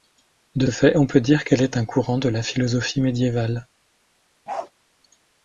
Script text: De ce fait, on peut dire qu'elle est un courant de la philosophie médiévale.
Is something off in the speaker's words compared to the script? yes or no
yes